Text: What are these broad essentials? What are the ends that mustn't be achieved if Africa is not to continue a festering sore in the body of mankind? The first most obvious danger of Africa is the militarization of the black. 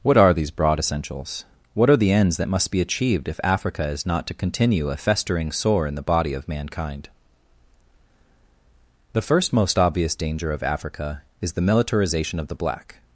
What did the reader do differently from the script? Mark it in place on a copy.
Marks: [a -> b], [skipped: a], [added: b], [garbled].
What are these broad essentials? What are the ends that [mustn't -> must] be achieved if Africa is not to continue a festering sore in the body of mankind? The first most obvious danger of Africa is the militarization of the black.